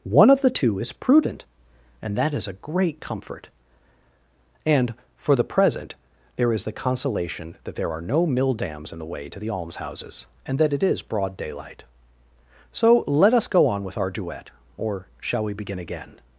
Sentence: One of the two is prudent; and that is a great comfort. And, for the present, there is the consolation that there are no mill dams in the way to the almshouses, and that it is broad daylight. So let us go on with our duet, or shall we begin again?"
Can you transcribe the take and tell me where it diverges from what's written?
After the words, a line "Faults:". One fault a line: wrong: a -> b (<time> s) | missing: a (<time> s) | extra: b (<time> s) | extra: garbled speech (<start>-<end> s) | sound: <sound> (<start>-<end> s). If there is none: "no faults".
One of the two is prudent; and that is a great comfort. And, for the present, there is the consolation that there are no mill dams in the way to the almshouses, and that it is broad daylight. So let us go on with our duet, or shall we begin again?"
Faults:
no faults